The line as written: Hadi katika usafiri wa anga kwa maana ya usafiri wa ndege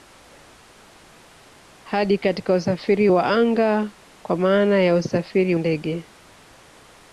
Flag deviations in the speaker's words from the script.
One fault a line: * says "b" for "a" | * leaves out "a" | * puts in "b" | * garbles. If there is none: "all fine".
* leaves out "wa"